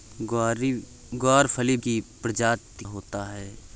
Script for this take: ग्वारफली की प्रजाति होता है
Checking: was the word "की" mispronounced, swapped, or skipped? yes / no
no